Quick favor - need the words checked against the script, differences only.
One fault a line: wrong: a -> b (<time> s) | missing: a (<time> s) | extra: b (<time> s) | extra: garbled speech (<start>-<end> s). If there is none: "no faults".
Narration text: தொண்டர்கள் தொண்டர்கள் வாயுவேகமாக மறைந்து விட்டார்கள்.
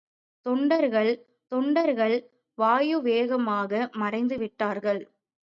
no faults